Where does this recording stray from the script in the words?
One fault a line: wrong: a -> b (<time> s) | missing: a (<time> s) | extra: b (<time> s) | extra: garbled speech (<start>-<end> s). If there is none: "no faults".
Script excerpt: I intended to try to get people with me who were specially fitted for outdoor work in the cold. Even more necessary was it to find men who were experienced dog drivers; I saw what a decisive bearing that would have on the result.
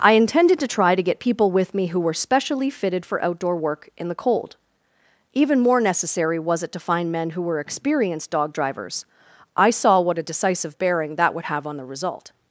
no faults